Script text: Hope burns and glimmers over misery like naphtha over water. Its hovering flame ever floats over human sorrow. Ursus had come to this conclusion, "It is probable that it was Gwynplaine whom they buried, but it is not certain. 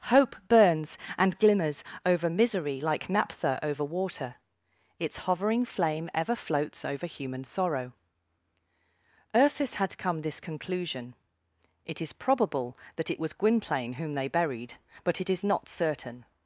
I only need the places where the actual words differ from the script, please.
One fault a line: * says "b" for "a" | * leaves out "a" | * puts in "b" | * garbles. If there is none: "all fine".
* leaves out "to"